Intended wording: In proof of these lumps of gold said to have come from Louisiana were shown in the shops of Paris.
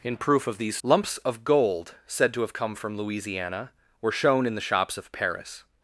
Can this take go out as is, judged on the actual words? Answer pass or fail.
pass